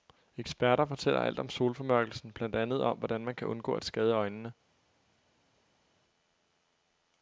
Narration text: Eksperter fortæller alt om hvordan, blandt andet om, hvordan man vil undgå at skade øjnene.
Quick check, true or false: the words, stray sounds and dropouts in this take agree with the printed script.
false